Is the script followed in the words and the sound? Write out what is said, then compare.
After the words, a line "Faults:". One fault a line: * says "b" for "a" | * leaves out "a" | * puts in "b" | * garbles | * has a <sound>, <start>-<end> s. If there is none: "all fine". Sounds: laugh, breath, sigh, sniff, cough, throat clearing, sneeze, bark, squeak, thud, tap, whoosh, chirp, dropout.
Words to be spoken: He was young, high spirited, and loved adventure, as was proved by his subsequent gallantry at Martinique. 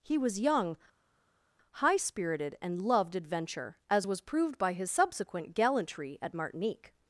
He was young, high spirited, and loved adventure, as was proved by his subsequent gallantry at Martinique.
Faults:
all fine